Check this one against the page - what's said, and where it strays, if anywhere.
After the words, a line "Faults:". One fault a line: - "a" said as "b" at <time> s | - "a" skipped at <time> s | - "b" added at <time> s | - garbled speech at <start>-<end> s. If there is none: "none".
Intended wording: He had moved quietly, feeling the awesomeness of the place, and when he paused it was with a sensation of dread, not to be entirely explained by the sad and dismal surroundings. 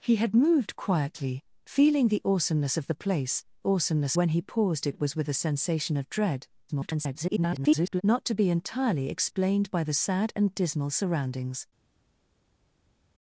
He had moved quietly, feeling the awesomeness of the place, awesomeness when he paused it was with a sensation of dread, [garbled] not to be entirely explained by the sad and dismal surroundings.
Faults:
- "and" said as "awesomeness" at 3.7 s
- garbled speech at 6.7-8.0 s